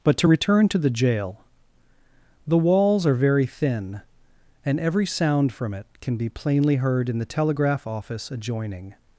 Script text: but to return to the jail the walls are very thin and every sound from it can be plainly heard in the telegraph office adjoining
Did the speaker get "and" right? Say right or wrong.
right